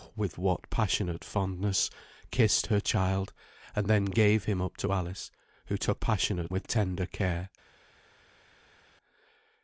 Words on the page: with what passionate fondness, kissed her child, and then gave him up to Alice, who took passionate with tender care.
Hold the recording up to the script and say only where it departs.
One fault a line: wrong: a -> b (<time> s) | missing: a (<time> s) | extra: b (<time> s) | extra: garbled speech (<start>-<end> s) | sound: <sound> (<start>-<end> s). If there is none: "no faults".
no faults